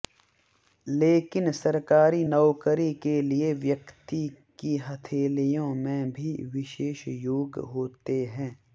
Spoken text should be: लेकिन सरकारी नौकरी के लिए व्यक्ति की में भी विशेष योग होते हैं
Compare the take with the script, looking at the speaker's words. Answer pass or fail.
fail